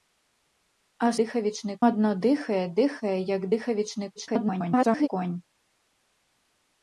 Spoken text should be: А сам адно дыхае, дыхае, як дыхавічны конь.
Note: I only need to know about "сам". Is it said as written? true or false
false